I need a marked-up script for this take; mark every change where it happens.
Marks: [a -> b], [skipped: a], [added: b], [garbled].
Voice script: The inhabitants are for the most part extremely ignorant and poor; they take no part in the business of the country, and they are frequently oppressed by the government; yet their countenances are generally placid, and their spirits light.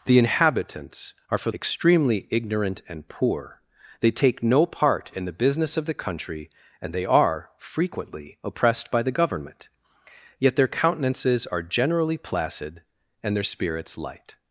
The inhabitants are for [skipped: the most part] extremely ignorant and poor; they take no part in the business of the country, and they are frequently oppressed by the government; yet their countenances are generally placid, and their spirits light.